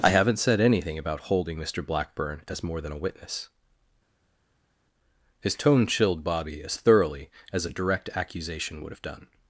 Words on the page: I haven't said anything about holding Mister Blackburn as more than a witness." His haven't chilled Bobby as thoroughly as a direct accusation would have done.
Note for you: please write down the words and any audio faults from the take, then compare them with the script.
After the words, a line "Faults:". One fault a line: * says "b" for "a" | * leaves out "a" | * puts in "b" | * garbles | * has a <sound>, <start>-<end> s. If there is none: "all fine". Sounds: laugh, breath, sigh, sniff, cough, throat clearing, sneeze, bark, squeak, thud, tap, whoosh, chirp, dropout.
I haven't said anything about holding Mister Blackburn as more than a witness." His tone chilled Bobby as thoroughly as a direct accusation would have done.
Faults:
* says "tone" for "haven't"